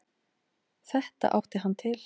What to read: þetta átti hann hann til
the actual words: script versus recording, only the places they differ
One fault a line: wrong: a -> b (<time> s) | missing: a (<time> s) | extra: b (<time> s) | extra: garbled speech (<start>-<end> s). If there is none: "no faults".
missing: hann (1.7 s)